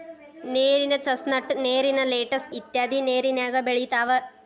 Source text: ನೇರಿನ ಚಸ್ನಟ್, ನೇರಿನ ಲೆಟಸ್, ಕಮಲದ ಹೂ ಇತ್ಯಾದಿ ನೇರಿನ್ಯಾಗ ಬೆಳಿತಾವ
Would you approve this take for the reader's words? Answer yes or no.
no